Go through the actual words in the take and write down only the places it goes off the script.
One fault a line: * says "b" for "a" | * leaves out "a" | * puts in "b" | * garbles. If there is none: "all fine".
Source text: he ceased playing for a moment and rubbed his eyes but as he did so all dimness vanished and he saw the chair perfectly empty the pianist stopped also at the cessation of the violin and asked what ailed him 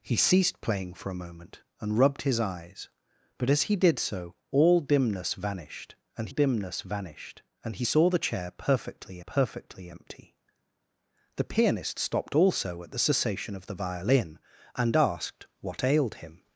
* puts in "dimness vanished and"
* puts in "perfectly"